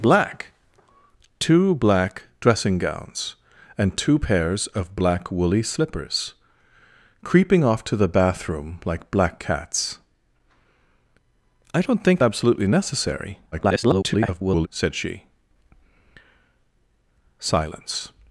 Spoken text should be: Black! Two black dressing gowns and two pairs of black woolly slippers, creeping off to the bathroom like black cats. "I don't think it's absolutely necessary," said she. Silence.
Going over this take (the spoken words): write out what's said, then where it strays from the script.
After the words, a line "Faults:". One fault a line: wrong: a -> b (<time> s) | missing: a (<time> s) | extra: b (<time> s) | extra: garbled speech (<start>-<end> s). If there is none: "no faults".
Black! Two black dressing gowns and two pairs of black woolly slippers, creeping off to the bathroom like black cats. "I don't think absolutely necessary," [garbled] said she. Silence.
Faults:
missing: it's (12.2 s)
extra: garbled speech (13.5-14.7 s)